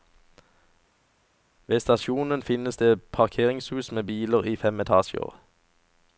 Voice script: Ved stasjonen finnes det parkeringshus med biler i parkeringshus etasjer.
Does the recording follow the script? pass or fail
fail